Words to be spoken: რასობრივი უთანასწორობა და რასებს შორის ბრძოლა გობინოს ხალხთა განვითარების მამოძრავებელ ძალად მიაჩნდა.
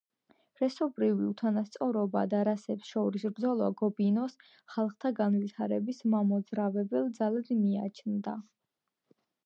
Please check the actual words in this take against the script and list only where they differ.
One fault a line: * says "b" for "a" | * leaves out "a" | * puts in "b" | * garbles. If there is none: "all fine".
all fine